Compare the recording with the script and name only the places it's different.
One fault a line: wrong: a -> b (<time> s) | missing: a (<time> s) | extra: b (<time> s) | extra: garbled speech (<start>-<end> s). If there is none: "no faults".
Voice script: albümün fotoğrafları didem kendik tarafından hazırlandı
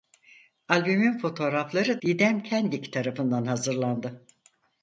no faults